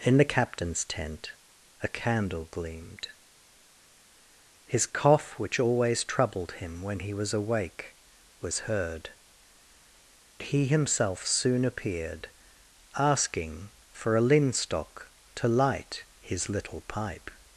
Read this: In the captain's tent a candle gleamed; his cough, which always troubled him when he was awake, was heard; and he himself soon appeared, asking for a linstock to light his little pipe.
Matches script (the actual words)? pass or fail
fail